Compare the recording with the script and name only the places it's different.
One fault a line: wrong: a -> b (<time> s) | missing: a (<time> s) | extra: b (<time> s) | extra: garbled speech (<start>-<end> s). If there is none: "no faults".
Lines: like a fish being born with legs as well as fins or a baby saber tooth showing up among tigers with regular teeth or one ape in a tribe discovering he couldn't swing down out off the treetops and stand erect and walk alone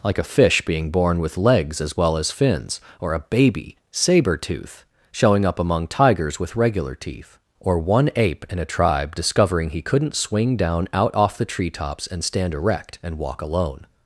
no faults